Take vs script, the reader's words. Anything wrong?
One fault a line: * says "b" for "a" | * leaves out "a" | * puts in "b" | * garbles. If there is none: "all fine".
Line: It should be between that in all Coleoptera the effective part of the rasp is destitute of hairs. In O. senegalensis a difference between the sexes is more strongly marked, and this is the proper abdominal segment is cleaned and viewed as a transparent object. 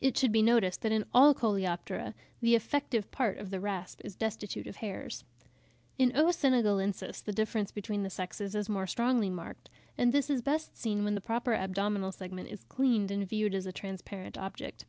* says "noticed" for "between"
* says "the" for "a"
* puts in "best seen when"